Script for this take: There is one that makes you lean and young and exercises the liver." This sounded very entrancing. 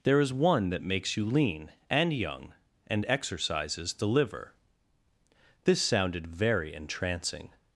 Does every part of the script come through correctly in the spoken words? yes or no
yes